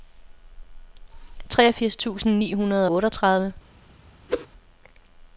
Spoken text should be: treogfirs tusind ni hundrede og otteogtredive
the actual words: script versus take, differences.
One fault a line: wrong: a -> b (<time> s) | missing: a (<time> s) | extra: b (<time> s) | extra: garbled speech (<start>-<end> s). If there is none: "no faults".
missing: og (2.9 s)